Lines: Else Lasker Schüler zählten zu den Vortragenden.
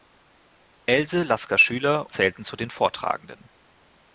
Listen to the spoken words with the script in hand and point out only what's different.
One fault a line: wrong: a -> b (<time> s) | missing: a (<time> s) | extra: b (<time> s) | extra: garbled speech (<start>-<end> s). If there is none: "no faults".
no faults